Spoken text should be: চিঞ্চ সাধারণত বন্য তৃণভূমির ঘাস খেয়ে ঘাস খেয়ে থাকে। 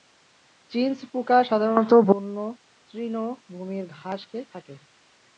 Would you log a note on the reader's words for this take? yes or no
yes